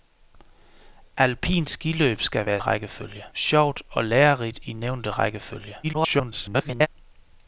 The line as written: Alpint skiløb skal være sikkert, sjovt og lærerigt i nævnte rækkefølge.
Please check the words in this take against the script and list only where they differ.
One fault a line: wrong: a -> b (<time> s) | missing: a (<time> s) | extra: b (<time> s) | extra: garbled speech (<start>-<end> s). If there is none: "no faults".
wrong: sikkert -> rækkefølge (2.6 s)
extra: garbled speech (5.8-6.9 s)